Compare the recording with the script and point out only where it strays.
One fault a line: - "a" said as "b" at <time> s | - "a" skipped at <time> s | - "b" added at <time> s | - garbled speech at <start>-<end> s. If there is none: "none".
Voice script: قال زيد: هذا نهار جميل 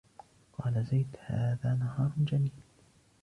none